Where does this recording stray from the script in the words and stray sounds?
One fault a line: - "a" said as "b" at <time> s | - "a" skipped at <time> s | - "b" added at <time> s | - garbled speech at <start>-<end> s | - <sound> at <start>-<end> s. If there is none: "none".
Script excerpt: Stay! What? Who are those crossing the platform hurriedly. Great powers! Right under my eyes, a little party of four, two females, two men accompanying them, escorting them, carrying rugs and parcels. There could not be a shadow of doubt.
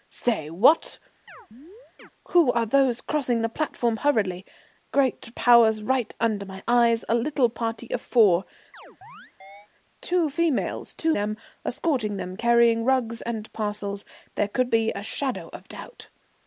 - chirp at 1.3-2.1 s
- chirp at 8.7-9.7 s
- "men accompanying" skipped at 11.2 s
- "not" skipped at 14.7 s